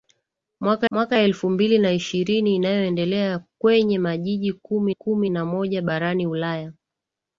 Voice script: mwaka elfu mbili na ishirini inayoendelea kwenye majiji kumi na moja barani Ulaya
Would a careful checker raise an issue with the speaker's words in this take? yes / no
yes